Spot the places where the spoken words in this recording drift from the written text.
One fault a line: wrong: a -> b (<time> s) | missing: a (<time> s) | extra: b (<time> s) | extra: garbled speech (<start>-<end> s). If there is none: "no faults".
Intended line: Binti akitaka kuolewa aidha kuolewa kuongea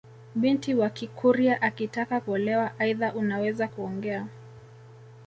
extra: wa kikurya (0.7 s)
wrong: kuolewa -> unaweza (3.1 s)